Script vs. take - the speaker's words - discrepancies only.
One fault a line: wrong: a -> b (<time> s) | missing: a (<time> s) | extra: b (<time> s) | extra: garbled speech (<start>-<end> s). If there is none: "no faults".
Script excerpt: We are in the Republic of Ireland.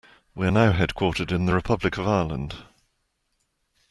extra: now headquartered (0.5 s)